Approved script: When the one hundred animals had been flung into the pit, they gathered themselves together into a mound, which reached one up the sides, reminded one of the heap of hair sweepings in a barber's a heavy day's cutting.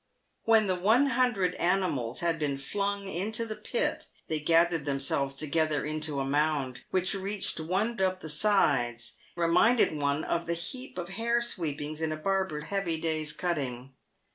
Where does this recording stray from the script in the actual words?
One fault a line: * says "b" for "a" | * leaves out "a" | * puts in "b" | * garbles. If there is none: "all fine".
all fine